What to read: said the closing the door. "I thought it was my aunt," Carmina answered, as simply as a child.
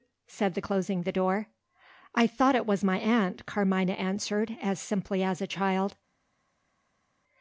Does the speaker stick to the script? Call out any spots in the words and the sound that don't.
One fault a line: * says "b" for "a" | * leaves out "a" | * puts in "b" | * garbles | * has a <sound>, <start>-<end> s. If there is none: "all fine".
all fine